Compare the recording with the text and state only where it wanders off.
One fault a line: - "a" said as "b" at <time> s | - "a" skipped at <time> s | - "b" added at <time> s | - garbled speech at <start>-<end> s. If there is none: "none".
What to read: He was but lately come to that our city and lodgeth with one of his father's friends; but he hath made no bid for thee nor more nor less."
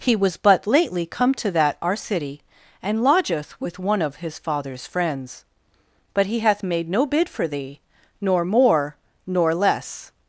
none